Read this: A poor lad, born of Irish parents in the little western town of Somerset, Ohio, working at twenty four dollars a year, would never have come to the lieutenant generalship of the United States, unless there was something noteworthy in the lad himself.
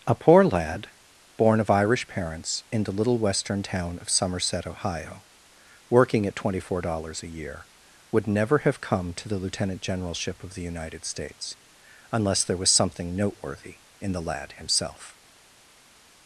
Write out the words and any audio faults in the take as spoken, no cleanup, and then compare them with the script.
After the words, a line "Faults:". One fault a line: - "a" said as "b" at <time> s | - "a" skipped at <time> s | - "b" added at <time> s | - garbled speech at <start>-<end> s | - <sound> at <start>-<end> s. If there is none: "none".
A poor lad, born of Irish parents in the little western town of Somerset, Ohio, working at twenty four dollars a year, would never have come to the lieutenant generalship of the United States, unless there was something noteworthy in the lad himself.
Faults:
none